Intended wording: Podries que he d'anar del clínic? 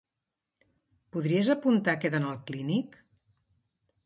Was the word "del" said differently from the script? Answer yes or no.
yes